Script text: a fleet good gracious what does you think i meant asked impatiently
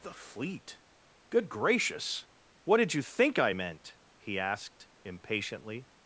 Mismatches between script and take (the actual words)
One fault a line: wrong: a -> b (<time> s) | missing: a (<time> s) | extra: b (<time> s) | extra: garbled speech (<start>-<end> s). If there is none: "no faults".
wrong: a -> the (0.0 s)
wrong: does -> did (2.8 s)
extra: he (4.2 s)